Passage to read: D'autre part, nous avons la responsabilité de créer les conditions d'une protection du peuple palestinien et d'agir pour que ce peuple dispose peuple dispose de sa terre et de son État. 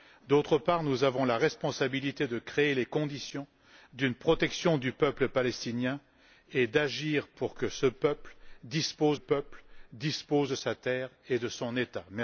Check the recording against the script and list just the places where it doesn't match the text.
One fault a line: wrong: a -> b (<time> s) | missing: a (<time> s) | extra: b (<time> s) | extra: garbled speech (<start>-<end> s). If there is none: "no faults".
no faults